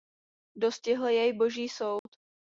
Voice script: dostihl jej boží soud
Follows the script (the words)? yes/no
yes